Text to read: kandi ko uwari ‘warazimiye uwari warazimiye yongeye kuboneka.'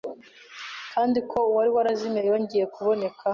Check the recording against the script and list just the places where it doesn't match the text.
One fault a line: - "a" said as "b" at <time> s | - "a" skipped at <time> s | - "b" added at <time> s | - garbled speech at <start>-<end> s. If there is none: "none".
- "uwari warazimiye" skipped at 2.2 s